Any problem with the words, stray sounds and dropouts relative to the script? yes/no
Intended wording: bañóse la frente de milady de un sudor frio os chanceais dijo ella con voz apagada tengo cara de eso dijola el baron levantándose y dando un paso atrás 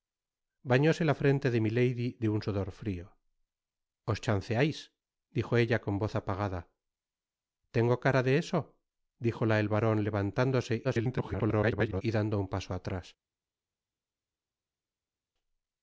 yes